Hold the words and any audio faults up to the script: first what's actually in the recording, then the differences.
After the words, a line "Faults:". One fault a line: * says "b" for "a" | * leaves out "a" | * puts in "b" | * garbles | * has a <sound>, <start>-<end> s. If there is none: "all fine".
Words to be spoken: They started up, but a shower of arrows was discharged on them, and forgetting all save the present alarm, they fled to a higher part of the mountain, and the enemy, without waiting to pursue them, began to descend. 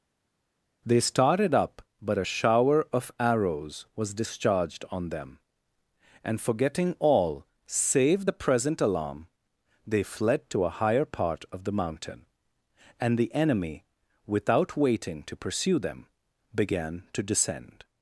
They started up, but a shower of arrows was discharged on them, and forgetting all save the present alarm, they fled to a higher part of the mountain, and the enemy, without waiting to pursue them, began to descend.
Faults:
all fine